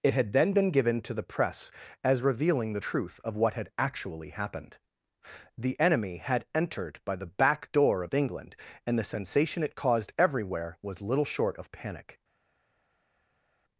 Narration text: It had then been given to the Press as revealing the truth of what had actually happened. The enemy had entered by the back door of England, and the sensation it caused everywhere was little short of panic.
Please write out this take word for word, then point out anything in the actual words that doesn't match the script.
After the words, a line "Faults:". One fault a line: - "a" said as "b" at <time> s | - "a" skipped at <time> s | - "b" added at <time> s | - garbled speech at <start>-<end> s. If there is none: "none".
It had then been given to the Press as revealing the truth of what had actually happened. The enemy had entered by the back door of England, and the sensation it caused everywhere was little short of panic.
Faults:
none